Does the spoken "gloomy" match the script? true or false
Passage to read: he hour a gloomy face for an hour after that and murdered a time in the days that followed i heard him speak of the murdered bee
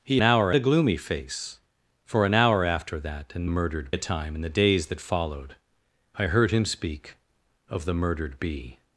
true